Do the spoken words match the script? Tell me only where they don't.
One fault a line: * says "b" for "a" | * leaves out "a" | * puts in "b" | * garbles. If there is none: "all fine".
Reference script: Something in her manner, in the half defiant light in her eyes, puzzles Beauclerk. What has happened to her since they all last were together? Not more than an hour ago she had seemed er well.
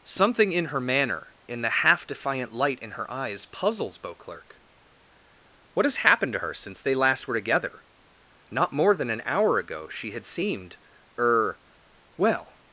* leaves out "all"